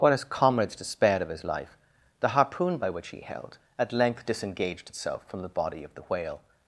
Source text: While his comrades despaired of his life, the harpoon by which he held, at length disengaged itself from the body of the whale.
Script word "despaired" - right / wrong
right